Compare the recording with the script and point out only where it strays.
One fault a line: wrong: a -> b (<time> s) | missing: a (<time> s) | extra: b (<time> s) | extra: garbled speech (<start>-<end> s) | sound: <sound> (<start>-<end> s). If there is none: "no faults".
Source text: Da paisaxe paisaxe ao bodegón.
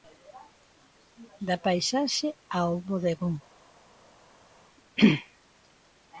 missing: paisaxe (2.3 s)